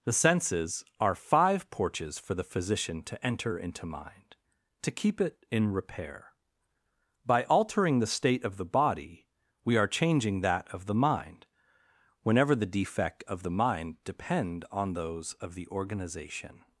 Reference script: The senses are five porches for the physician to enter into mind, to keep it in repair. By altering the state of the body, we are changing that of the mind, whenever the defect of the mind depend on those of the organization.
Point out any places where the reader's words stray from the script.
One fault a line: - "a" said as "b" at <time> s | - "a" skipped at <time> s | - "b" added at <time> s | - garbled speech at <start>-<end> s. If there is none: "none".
none